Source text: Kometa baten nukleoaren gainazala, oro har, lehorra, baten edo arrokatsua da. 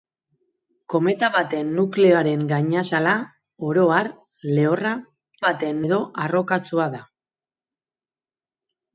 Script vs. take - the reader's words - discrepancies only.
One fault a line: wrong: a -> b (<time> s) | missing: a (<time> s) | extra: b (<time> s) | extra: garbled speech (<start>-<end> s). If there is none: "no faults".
no faults